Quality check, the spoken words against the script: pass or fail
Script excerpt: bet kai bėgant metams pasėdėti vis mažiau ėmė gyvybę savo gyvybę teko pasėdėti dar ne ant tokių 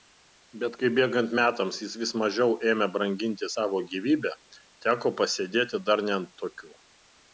fail